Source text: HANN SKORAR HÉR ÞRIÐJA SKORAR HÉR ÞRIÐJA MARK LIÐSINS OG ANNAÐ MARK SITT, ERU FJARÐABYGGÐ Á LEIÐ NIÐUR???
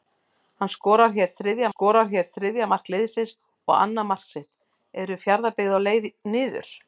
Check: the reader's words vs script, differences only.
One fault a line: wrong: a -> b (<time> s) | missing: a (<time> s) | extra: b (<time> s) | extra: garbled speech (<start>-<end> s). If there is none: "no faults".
no faults